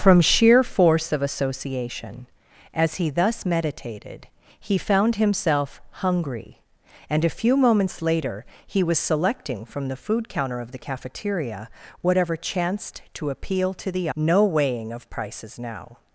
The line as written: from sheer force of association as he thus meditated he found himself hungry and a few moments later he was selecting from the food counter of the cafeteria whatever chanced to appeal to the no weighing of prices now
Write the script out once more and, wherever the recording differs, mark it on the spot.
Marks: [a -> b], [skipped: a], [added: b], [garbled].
from sheer force of association as he thus meditated he found himself hungry and a few moments later he was selecting from the food counter of the cafeteria whatever chanced to appeal to the no weighing of prices now